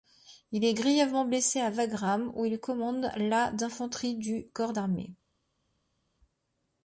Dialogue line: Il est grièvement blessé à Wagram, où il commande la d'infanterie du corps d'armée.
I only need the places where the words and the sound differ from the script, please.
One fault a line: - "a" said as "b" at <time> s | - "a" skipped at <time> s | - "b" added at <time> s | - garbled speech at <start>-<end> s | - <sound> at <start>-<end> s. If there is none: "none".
none